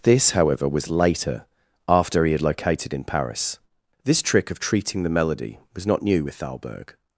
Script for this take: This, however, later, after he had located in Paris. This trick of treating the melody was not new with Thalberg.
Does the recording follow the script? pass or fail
fail